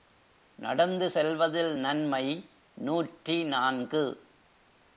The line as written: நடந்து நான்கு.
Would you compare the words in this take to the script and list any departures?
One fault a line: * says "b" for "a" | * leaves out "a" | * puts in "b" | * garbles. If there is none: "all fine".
* puts in "செல்வதில் நன்மை நூற்றி"